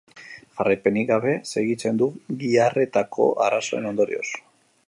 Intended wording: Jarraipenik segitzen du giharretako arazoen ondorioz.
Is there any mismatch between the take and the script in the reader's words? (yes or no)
yes